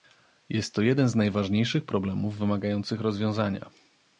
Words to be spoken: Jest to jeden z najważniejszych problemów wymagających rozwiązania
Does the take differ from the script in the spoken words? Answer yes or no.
no